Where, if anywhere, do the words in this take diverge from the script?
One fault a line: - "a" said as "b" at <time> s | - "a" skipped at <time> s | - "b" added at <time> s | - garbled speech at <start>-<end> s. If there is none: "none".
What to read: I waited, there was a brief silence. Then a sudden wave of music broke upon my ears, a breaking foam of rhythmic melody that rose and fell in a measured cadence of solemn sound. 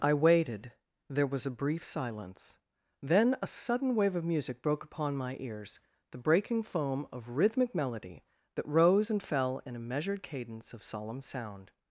- "a" said as "the" at 6.1 s